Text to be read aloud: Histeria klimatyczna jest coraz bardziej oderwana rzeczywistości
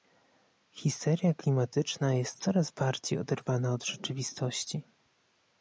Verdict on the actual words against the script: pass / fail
fail